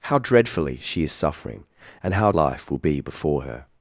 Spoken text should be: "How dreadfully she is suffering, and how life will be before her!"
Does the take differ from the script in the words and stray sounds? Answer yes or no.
no